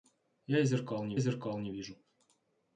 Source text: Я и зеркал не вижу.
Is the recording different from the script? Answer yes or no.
yes